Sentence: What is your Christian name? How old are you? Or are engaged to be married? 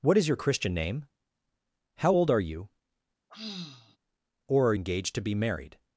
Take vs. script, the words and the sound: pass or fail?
fail